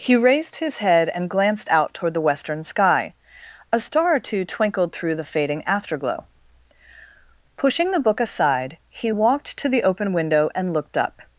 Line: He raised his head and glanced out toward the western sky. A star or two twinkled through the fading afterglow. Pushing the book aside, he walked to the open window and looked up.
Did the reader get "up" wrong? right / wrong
right